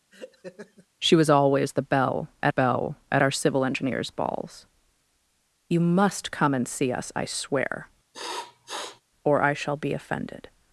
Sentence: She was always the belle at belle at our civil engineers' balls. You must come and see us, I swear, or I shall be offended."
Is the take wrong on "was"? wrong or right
right